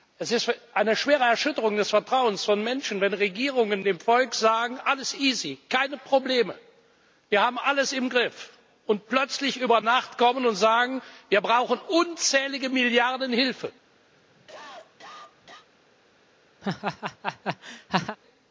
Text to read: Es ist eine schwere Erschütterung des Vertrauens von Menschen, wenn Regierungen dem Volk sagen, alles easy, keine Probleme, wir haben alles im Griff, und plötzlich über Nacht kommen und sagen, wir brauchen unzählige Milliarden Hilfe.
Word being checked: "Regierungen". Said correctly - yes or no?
yes